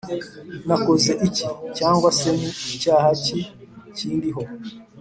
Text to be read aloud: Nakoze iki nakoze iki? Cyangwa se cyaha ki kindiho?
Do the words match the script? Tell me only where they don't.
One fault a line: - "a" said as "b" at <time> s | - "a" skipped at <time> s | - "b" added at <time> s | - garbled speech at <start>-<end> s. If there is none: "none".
- "nakoze iki" skipped at 1.4 s
- "ni" added at 2.4 s